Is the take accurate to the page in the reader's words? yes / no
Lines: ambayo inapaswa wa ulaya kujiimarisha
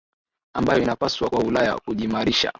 yes